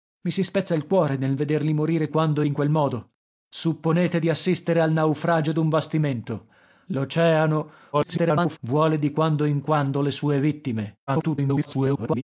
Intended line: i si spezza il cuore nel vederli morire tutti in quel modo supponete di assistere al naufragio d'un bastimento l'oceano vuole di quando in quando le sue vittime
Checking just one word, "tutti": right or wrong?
wrong